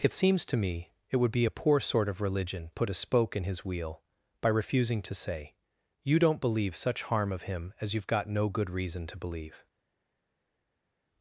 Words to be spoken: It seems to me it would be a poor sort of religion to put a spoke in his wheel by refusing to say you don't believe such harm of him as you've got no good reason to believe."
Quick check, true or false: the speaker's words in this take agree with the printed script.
false